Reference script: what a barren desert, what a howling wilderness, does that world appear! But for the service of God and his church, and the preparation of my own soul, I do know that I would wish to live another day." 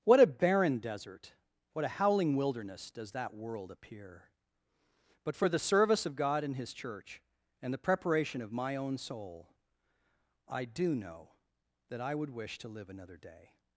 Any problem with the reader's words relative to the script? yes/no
no